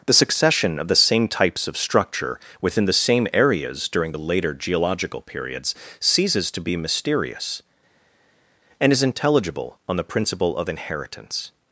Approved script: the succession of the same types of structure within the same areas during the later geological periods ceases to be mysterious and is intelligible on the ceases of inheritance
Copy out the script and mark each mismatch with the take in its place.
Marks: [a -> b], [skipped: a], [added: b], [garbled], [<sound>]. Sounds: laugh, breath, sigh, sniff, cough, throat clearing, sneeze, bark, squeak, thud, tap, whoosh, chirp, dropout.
the succession of the same types of structure within the same areas during the later geological periods ceases to be mysterious and is intelligible on the [ceases -> principle] of inheritance